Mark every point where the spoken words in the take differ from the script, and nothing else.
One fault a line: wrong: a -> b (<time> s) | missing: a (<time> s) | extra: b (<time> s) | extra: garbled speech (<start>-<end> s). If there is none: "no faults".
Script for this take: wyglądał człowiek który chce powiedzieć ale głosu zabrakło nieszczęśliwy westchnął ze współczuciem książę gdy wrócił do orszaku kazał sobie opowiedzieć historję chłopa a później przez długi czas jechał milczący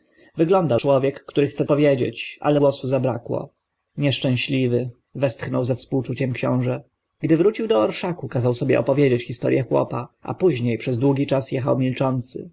no faults